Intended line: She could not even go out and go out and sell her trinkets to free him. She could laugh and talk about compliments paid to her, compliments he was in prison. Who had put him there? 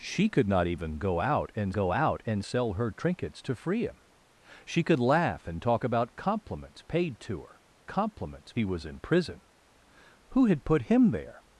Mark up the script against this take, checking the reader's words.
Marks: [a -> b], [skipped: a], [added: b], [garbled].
She could not even go out and go out and sell her trinkets to free him. She could laugh and talk about compliments paid to her, compliments he was in prison. Who had put him there?